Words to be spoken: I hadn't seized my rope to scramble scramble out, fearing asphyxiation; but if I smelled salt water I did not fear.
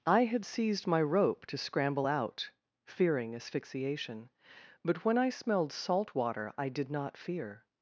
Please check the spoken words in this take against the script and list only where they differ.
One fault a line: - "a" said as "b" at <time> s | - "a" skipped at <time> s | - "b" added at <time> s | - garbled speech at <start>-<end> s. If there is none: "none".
- "hadn't" said as "had" at 0.2 s
- "scramble" skipped at 2.1 s
- "if" said as "when" at 5.0 s